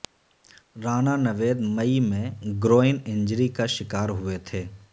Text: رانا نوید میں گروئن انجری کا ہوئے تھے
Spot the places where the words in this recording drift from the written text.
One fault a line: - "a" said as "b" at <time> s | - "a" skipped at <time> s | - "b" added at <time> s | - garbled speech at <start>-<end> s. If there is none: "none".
- "مئی" added at 1.8 s
- "شکار" added at 3.8 s